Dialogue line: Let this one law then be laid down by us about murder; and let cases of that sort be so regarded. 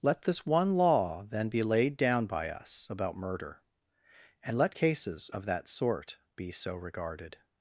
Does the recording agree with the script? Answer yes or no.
yes